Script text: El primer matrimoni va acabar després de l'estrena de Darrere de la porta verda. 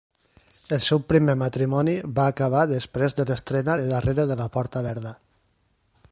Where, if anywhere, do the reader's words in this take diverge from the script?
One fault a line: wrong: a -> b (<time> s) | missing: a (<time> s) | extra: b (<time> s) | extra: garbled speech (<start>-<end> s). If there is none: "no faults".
extra: seu (0.8 s)